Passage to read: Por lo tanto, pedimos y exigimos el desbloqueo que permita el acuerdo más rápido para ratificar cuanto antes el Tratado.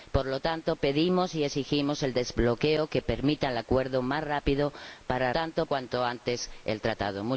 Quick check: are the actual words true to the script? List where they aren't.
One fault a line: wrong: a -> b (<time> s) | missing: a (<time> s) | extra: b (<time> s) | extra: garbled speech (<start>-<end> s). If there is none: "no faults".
wrong: ratificar -> tanto (5.3 s)